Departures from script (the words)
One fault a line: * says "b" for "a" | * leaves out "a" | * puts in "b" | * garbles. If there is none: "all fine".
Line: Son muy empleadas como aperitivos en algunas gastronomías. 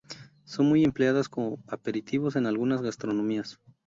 all fine